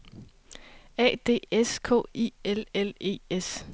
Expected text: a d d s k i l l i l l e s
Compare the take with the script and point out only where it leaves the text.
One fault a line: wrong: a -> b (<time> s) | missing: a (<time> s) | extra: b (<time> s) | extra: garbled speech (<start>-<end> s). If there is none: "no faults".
missing: d (1.4 s)
missing: i l l (2.9 s)